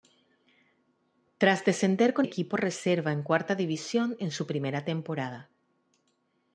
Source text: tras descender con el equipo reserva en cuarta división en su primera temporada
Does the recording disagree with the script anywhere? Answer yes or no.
yes